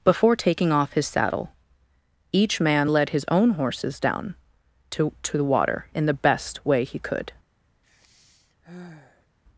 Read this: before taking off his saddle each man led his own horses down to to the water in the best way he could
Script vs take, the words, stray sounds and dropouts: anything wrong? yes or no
yes